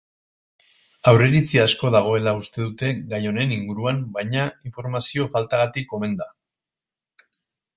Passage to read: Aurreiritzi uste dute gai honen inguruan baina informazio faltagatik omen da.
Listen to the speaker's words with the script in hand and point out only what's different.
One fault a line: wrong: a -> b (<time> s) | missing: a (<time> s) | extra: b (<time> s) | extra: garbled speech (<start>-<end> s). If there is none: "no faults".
extra: asko dagoela (1.6 s)